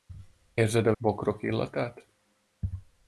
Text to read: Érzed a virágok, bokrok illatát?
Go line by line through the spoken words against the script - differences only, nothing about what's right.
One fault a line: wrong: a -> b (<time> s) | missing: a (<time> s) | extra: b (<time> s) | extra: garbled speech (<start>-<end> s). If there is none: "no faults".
missing: virágok (0.9 s)